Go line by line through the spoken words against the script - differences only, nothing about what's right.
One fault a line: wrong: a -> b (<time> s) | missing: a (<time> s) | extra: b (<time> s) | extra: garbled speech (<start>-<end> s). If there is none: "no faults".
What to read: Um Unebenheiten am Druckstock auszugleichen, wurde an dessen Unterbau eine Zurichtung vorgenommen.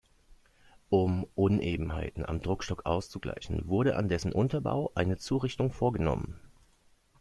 no faults